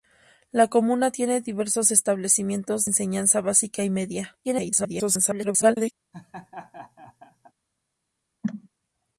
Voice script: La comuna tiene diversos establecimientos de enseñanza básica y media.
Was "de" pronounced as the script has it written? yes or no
no